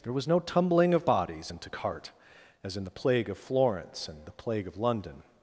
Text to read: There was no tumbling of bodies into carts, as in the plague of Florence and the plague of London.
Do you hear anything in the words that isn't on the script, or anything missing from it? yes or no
yes